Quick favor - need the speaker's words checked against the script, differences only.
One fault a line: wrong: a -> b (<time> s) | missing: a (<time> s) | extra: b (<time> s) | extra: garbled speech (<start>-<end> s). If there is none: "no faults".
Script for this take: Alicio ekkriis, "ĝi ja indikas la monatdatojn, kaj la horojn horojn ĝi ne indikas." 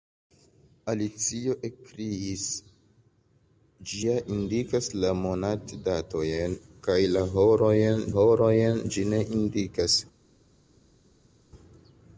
no faults